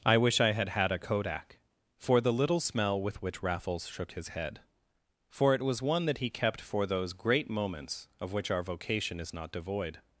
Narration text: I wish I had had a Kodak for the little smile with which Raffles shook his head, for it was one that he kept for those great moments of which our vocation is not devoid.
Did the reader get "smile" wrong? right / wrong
wrong